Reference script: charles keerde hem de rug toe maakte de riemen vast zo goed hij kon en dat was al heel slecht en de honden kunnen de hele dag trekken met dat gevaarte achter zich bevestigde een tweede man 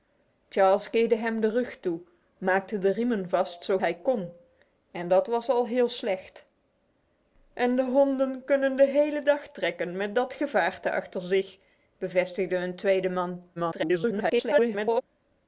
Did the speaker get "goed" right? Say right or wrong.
wrong